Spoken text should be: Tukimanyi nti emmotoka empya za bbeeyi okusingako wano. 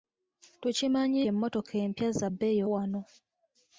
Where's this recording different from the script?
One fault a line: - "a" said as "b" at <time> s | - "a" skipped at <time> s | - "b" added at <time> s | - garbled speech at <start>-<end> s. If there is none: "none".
- "nti" skipped at 1.2 s
- "okusingako" skipped at 2.6 s